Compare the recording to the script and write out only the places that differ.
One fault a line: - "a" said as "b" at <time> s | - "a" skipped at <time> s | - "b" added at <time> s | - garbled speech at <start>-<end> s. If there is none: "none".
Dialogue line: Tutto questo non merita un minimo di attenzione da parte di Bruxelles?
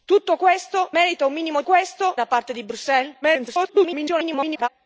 - "non" skipped at 0.9 s
- "attenzione" said as "questo" at 1.6 s
- garbled speech at 3.2-4.7 s